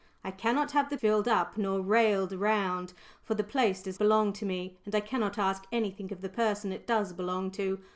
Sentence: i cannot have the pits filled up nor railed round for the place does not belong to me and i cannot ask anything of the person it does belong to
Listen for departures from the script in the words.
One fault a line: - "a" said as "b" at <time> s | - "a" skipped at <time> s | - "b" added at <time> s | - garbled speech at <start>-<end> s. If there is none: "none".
- "pits" skipped at 1.0 s
- "not" skipped at 4.0 s